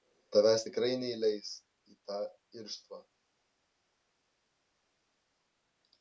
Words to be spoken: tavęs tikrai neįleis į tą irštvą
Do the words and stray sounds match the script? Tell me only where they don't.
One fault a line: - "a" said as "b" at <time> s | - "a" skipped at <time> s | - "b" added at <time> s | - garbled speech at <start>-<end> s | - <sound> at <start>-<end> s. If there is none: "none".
none